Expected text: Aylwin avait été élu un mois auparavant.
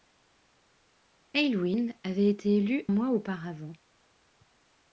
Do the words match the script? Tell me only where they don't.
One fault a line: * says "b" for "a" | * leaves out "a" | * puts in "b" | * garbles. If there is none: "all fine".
* leaves out "un"